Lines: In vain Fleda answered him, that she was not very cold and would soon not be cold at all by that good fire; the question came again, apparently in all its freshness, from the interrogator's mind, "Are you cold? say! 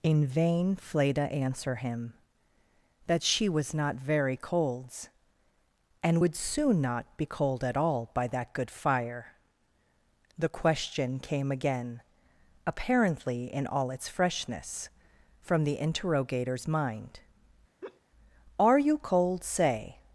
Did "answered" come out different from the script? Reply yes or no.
yes